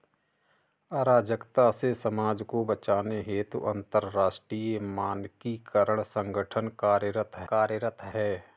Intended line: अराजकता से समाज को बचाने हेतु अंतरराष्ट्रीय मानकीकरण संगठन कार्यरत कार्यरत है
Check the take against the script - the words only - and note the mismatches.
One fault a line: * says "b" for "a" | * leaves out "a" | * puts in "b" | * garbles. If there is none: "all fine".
all fine